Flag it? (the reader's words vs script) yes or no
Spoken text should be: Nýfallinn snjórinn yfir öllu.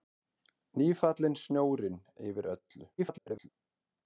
yes